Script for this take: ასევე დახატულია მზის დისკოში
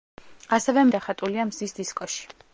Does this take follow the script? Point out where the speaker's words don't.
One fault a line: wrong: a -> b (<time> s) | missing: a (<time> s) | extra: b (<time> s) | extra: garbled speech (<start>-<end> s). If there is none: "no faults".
no faults